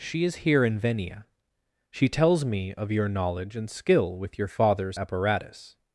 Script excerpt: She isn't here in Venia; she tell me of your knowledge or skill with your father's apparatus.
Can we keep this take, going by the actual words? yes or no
no